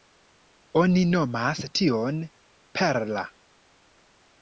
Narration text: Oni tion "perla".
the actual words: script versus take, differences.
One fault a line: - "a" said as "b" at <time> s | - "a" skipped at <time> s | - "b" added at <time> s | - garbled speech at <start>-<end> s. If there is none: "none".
- "nomas" added at 1.1 s